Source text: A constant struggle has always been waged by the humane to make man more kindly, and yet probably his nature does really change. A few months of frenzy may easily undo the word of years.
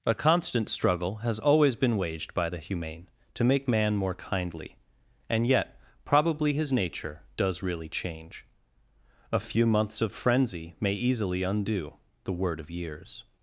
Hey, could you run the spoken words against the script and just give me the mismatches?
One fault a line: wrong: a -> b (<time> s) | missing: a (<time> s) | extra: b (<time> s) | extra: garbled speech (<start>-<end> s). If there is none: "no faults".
no faults